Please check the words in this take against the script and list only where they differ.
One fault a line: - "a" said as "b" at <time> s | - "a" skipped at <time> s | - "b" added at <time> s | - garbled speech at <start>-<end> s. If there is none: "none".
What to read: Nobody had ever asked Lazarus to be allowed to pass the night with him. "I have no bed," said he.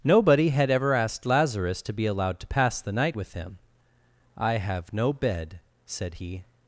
none